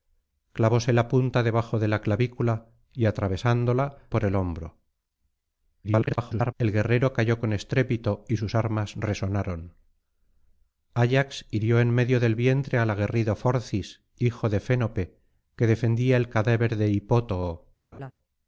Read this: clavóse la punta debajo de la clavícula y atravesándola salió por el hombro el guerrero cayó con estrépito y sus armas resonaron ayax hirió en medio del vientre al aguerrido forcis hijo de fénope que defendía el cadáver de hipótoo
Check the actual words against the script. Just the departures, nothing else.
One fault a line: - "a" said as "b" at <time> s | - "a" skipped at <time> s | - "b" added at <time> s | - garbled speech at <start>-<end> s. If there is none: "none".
- "salió" skipped at 4.0 s
- garbled speech at 5.8-6.5 s